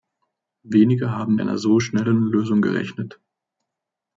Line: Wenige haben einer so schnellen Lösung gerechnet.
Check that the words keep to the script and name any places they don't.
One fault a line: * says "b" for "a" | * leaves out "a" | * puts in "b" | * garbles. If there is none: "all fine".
all fine